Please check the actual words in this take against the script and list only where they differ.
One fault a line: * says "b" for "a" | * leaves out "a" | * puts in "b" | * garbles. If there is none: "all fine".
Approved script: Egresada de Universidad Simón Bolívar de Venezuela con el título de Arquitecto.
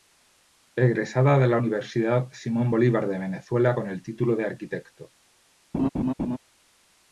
* puts in "la"